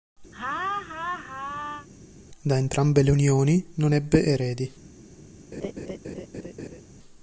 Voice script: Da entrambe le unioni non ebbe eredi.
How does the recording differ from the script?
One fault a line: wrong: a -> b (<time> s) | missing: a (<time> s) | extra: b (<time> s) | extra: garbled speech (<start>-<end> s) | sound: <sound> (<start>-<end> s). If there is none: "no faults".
sound: laugh (0.3-1.9 s)
sound: laugh (5.5-6.8 s)